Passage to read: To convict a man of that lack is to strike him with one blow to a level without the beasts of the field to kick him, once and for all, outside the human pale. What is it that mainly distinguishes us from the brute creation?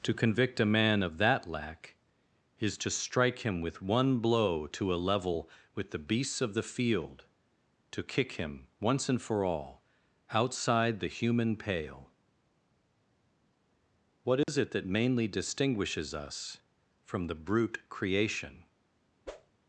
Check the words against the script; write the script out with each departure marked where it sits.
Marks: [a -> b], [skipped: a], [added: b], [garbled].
To convict a man of that lack is to strike him with one blow to a level [without -> with] the beasts of the field to kick him, once and for all, outside the human pale. What is it that mainly distinguishes us from the brute creation?